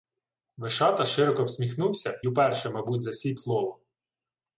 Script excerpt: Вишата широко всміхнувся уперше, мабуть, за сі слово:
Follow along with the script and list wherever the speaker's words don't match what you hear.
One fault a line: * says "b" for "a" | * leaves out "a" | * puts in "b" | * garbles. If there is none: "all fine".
all fine